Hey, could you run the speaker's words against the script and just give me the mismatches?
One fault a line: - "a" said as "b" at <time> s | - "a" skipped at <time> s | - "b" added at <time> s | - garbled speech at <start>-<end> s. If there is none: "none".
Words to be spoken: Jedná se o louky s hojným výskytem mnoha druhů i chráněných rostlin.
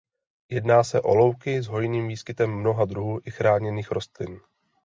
none